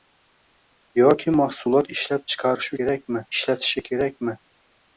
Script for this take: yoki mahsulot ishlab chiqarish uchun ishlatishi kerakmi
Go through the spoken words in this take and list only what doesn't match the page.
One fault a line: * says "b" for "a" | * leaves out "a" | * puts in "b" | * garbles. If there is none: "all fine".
* says "kerakmi" for "uchun"